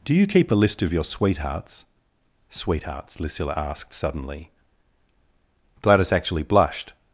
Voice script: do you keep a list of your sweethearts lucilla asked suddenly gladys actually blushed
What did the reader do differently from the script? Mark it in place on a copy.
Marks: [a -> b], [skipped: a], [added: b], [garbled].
do you keep a list of your sweethearts [added: sweethearts] lucilla asked suddenly gladys actually blushed